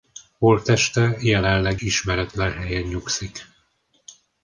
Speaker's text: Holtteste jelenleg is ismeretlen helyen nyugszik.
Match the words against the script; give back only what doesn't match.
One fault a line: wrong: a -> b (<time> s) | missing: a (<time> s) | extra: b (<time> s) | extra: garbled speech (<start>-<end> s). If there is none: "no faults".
missing: is (1.8 s)